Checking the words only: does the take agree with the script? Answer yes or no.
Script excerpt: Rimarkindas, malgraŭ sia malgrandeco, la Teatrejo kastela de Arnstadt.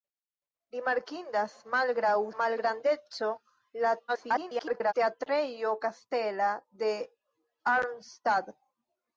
no